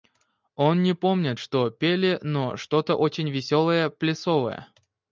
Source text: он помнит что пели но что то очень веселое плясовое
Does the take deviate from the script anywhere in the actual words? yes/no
yes